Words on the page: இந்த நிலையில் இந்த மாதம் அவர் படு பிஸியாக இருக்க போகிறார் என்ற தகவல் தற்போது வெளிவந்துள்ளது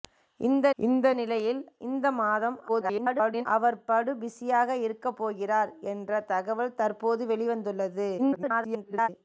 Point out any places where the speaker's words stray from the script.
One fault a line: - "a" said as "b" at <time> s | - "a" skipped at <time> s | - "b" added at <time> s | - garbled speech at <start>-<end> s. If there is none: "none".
- "இந்த" added at 0.8 s
- garbled speech at 2.7-3.5 s
- garbled speech at 8.2-9.1 s